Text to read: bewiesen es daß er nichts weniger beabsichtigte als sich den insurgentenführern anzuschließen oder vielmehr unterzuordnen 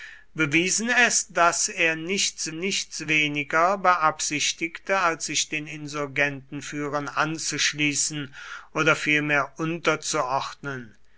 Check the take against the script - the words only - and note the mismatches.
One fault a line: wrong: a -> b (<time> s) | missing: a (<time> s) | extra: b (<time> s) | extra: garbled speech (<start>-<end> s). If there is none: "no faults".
extra: nichts (2.5 s)